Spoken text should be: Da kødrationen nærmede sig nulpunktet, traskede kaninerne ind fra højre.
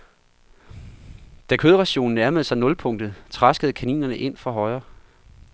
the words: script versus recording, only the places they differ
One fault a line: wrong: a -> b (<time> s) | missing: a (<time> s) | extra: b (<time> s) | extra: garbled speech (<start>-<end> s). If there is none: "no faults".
no faults